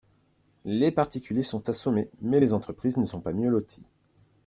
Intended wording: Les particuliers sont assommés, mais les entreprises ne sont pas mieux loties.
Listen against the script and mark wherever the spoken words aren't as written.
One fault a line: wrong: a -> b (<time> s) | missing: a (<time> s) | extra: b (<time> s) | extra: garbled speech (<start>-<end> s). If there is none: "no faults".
no faults